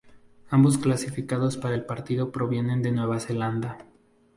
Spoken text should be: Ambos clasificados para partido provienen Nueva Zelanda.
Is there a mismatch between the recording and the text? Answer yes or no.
yes